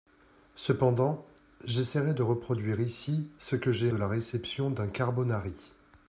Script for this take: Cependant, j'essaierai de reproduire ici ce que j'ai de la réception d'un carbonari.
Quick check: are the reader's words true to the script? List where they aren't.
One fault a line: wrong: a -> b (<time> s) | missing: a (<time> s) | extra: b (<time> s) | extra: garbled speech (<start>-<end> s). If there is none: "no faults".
no faults